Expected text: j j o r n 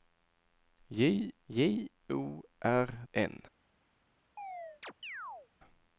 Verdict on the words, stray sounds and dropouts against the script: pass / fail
fail